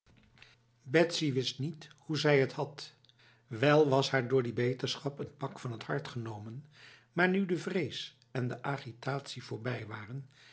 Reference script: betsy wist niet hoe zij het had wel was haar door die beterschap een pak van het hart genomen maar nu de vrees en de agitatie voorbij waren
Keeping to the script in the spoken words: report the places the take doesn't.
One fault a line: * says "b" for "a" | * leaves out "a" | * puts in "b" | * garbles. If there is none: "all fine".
all fine